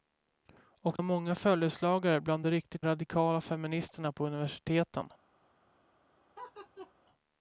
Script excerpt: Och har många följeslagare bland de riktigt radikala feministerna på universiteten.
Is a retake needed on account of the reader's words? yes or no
no